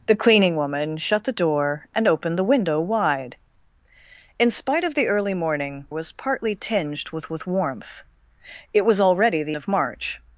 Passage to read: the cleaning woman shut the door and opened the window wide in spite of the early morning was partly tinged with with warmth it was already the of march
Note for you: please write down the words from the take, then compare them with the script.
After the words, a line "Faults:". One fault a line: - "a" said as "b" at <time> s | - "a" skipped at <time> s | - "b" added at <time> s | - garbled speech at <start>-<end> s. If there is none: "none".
the cleaning woman shut the door and opened the window wide in spite of the early morning was partly tinged with with warmth it was already the of march
Faults:
none